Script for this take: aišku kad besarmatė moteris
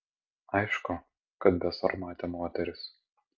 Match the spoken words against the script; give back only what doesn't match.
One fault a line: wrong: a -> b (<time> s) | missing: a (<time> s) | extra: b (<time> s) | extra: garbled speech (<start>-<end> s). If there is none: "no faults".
no faults